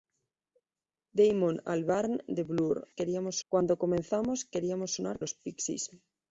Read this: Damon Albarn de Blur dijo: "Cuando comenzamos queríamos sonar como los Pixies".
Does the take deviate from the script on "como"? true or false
true